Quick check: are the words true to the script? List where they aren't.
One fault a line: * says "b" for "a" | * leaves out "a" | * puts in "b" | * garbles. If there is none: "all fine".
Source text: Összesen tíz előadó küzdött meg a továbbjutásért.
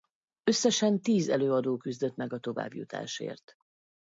all fine